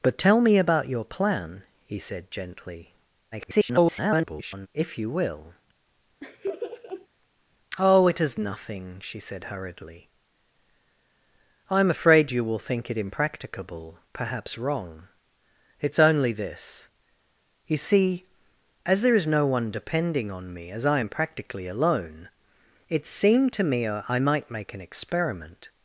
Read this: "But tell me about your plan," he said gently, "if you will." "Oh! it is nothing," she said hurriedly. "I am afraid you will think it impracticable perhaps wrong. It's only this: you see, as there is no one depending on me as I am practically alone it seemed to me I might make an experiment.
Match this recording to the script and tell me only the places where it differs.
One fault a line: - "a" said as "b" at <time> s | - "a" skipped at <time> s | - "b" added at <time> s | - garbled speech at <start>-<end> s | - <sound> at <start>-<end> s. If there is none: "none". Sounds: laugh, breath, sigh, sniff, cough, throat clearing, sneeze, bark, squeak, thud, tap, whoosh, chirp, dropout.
- garbled speech at 3.3-4.7 s
- laugh at 6.2-7.1 s